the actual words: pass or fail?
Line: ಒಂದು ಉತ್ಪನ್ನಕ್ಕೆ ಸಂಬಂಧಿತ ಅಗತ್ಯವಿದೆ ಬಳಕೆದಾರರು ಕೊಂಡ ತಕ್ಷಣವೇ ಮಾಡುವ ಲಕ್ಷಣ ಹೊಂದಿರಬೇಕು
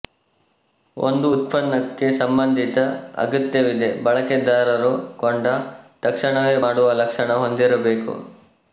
pass